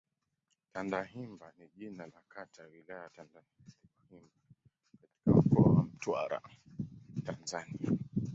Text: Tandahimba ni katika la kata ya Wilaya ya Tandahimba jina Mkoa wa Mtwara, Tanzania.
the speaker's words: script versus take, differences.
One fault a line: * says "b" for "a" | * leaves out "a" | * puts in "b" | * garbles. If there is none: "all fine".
* says "jina" for "katika"
* says "katika" for "jina"